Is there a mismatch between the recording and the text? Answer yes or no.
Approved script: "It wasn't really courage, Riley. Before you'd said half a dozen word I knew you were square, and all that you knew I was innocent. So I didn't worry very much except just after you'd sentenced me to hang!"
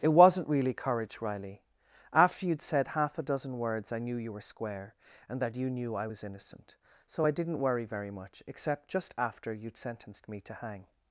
yes